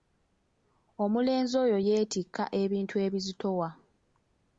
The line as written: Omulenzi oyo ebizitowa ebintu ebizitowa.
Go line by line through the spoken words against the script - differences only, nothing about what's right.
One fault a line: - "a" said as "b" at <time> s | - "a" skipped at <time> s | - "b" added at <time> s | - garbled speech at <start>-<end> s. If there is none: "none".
- "ebizitowa" said as "yeetikka" at 1.9 s